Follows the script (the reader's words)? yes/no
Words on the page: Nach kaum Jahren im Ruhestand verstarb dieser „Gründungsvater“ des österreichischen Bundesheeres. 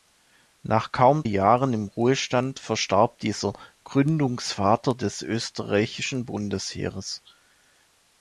yes